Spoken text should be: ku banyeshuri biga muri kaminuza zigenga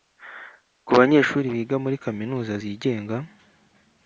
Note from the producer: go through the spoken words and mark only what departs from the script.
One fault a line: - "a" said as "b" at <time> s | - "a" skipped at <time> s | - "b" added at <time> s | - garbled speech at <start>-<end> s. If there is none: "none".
none